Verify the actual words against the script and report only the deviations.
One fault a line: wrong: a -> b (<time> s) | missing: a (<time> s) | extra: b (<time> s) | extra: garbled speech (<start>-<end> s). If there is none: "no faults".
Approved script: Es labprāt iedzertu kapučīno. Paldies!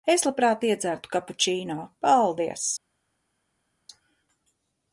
no faults